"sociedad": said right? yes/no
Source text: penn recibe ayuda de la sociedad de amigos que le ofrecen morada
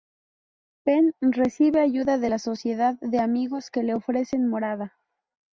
yes